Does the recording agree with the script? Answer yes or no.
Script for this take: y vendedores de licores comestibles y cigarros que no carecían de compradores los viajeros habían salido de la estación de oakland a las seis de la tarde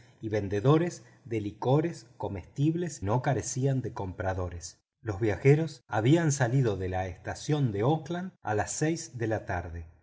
no